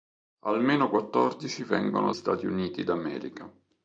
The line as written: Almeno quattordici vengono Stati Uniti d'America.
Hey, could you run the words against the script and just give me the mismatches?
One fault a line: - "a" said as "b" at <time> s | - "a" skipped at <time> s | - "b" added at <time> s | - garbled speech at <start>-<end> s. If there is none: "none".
none